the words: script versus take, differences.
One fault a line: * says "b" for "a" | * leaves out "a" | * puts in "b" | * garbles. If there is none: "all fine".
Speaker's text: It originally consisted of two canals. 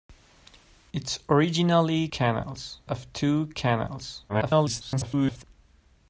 * says "canals" for "consisted"
* garbles